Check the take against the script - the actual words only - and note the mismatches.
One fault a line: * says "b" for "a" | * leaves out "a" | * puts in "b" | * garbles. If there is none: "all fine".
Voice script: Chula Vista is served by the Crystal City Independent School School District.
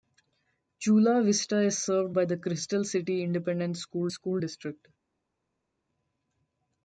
all fine